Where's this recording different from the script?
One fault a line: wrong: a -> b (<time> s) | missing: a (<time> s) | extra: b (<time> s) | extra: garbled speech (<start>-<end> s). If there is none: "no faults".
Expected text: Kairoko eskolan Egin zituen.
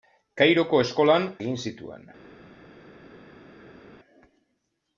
no faults